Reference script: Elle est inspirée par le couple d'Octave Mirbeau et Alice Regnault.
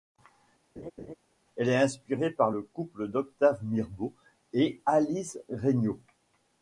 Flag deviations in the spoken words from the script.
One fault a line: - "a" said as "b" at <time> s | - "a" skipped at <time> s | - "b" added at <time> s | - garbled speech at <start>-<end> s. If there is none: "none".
none